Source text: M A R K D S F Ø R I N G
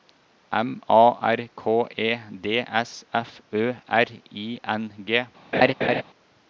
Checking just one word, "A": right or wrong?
right